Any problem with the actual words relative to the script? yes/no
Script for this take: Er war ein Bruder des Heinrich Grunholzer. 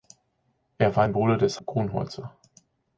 yes